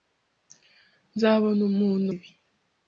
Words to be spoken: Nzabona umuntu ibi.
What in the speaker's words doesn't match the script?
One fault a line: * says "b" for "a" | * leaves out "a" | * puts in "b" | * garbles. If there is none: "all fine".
all fine